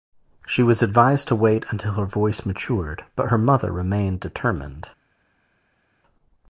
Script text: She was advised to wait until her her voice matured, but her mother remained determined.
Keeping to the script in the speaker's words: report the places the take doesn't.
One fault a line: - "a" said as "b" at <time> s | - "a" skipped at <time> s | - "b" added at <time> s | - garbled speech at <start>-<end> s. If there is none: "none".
- "her" skipped at 2.0 s